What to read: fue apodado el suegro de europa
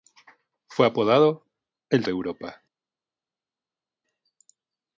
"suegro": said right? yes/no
no